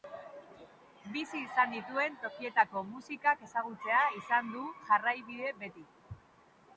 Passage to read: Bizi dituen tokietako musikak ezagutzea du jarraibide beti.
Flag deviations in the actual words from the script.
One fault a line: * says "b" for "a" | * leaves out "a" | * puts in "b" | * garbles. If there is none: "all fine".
* puts in "izan"
* puts in "izan"